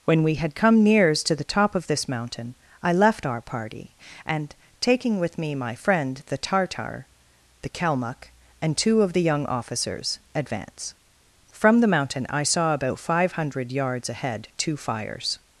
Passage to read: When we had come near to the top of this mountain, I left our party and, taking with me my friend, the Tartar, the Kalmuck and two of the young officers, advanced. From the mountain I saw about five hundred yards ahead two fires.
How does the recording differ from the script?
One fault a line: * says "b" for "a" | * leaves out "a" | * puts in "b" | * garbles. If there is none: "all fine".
* says "nears" for "near"
* says "advance" for "advanced"